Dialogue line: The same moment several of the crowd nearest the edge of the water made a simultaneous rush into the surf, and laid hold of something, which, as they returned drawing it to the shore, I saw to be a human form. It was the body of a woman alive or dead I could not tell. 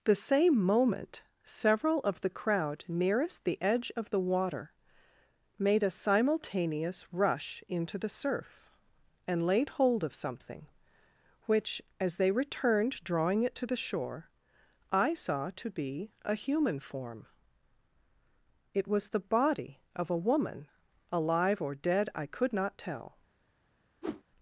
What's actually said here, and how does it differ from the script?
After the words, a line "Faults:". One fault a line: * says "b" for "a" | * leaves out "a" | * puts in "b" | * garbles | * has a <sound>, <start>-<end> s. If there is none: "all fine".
The same moment several of the crowd nearest the edge of the water made a simultaneous rush into the surf, and laid hold of something, which, as they returned drawing it to the shore, I saw to be a human form. It was the body of a woman alive or dead I could not tell.
Faults:
* has a whoosh, 24.0-24.2 s